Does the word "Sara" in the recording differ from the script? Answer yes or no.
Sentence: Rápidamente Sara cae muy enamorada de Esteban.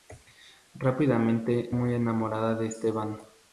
yes